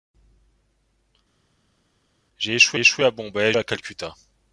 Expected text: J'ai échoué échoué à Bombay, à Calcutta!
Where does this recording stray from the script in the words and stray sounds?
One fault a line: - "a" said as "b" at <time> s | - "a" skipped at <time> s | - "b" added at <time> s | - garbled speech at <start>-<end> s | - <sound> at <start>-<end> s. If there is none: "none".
none